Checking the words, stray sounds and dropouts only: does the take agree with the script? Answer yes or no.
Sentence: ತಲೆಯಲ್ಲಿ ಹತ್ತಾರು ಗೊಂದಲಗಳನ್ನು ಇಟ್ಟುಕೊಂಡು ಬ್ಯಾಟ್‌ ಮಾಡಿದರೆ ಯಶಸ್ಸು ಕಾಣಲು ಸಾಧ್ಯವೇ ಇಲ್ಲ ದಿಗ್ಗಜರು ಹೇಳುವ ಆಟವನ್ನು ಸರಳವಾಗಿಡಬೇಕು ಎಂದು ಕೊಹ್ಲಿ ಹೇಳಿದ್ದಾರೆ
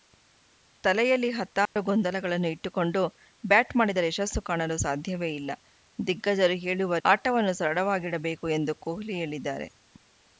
no